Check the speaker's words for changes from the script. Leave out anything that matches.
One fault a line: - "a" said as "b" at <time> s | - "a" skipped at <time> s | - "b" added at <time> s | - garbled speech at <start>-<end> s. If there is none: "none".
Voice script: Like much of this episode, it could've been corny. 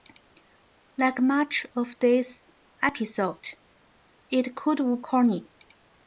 - "been" skipped at 5.0 s